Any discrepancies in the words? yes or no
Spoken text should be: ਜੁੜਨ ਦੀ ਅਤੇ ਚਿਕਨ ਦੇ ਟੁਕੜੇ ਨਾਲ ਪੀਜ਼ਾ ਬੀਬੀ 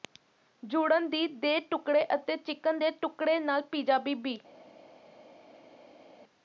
yes